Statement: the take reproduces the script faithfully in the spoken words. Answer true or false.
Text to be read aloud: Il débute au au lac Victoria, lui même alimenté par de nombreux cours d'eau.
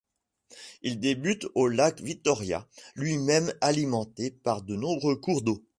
false